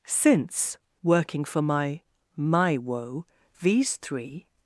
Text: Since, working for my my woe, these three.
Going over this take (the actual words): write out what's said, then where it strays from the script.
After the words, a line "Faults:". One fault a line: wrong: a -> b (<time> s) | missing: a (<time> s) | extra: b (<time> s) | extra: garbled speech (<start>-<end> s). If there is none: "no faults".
Since, working for my my woe, these three.
Faults:
no faults